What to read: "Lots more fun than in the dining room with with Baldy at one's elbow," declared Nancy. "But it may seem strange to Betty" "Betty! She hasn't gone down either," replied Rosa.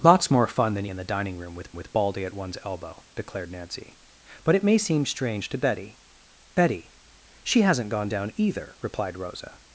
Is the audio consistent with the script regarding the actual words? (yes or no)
yes